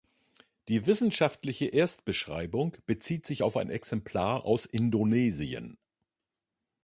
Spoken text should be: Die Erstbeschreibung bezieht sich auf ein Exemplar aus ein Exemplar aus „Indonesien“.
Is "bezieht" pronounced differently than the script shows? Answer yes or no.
no